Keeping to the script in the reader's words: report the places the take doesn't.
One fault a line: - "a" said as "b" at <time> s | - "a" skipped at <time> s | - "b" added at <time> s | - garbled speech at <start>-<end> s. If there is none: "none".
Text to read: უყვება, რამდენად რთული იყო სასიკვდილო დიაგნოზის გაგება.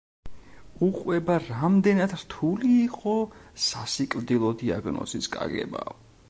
none